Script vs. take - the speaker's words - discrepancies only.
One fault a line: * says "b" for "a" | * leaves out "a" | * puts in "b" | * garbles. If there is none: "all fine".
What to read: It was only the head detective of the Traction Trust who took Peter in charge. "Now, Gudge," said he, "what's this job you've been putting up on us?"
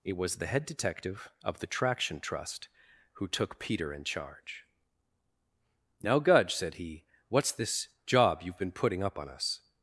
* leaves out "only"